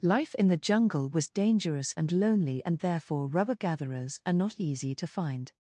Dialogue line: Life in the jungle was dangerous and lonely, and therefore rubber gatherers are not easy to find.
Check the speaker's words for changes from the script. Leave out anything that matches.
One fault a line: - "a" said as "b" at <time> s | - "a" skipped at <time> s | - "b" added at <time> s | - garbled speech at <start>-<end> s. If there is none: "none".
none